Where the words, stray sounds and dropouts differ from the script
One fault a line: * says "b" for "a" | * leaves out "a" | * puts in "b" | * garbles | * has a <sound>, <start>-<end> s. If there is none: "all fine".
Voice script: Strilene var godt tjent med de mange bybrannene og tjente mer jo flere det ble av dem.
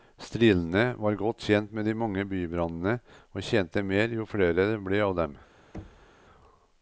* has a thud, 5.7-6.1 s